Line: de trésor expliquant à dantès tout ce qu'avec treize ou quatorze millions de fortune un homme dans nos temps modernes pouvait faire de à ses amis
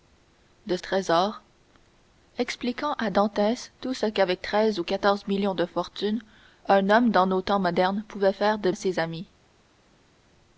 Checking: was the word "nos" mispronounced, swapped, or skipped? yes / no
no